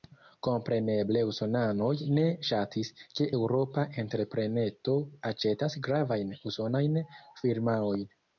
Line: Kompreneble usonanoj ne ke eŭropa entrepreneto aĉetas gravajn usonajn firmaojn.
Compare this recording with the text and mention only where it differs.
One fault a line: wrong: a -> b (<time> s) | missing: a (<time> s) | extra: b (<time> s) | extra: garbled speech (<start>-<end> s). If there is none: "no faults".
extra: ŝatis (2.5 s)